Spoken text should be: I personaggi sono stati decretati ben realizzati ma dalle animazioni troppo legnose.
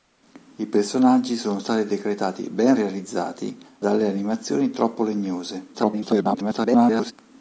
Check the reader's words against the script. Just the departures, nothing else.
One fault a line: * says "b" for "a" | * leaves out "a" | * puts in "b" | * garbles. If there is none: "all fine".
* leaves out "ma"
* garbles